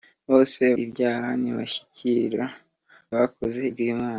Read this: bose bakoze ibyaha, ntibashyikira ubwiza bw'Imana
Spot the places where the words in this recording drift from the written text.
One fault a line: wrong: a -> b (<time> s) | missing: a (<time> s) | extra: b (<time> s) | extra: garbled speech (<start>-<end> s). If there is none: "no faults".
missing: bakoze (0.6 s)
wrong: ubwiza -> bakoze (3.2 s)